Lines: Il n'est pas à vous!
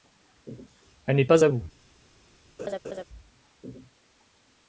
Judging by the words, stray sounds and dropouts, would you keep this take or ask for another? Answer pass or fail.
fail